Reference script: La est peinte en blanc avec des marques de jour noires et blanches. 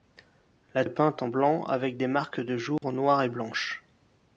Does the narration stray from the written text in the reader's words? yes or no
no